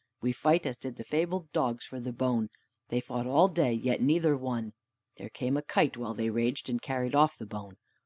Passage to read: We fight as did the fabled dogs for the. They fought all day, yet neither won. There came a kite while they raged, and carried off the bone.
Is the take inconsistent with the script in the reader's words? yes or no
yes